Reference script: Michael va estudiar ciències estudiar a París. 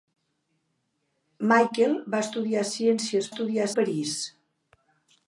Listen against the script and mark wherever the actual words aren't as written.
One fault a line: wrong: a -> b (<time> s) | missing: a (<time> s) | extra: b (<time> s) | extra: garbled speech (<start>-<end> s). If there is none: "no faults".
no faults